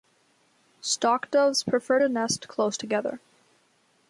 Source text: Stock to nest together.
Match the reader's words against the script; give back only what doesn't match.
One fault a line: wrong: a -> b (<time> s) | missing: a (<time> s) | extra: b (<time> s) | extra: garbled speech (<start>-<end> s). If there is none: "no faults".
extra: doves prefer (1.3 s)
extra: close (2.5 s)